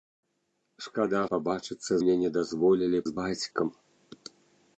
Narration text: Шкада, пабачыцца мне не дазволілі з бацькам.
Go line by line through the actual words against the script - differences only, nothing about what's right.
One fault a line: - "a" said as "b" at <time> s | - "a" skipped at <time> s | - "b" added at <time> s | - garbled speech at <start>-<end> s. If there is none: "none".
none